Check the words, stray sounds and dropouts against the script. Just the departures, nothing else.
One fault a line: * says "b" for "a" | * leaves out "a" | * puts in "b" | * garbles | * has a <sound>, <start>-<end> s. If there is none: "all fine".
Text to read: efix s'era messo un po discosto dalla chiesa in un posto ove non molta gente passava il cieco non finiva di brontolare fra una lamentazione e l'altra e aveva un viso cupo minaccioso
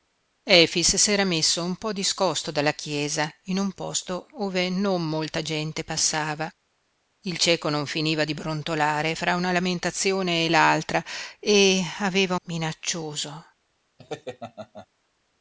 * leaves out "un viso cupo"
* has a laugh, 14.0-14.9 s